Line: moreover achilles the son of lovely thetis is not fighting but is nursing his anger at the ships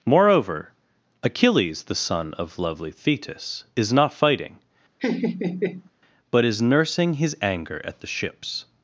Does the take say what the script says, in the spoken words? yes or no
yes